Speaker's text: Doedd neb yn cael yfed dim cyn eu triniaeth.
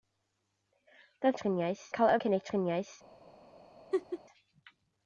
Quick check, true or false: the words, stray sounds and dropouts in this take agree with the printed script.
false